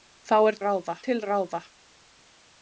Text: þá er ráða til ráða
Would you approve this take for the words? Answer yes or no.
yes